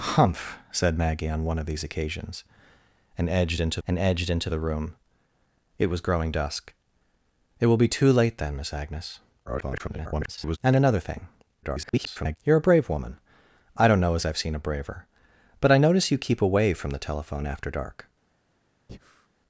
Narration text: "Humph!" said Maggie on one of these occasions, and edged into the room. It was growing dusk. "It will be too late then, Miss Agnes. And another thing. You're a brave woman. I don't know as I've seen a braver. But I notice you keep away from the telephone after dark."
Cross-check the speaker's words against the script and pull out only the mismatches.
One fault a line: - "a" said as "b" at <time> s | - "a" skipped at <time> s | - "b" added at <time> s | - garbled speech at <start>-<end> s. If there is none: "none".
- "and edged into" added at 3.9 s
- garbled speech at 9.5-10.6 s
- garbled speech at 11.6-12.4 s